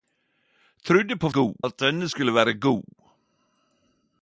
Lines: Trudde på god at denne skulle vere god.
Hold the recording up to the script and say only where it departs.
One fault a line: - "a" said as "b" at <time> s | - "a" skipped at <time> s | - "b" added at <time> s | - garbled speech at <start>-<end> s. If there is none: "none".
none